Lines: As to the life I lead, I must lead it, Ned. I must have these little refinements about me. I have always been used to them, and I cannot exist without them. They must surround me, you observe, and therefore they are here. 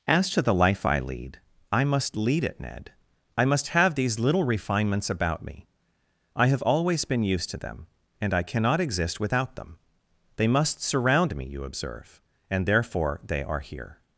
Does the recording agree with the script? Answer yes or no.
yes